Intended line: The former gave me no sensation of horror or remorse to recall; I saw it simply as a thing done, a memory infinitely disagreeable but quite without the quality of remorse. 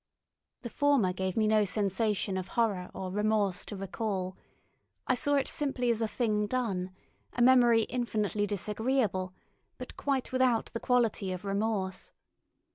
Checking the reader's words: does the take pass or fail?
pass